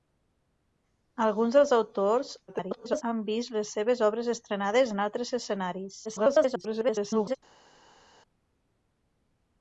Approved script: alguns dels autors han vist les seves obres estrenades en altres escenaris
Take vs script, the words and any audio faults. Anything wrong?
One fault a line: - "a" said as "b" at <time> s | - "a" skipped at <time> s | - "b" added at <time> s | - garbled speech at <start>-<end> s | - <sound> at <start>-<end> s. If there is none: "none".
- garbled speech at 2.5-3.0 s
- garbled speech at 6.0-7.4 s